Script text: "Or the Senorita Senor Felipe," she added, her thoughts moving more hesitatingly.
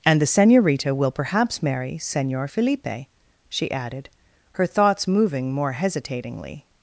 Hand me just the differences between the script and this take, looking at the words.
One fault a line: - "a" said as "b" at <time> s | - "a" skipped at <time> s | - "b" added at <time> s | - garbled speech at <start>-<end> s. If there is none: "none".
- "Or" said as "And" at 0.0 s
- "will perhaps marry" added at 0.9 s